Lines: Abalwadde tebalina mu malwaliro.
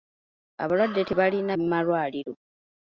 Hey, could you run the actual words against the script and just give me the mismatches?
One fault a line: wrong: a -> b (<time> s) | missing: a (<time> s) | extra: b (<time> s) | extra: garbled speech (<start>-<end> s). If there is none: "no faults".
no faults